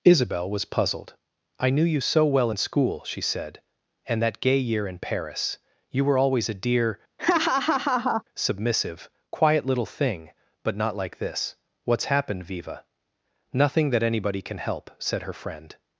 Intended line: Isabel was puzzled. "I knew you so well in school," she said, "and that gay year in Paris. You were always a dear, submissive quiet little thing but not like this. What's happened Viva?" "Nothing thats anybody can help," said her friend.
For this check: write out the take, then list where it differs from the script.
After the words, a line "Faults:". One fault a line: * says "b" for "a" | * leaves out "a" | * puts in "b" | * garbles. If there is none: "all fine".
Isabel was puzzled. "I knew you so well in school," she said, "and that gay year in Paris. You were always a dear, submissive quiet little thing but not like this. What's happened Viva?" "Nothing that anybody can help," said her friend.
Faults:
* says "that" for "thats"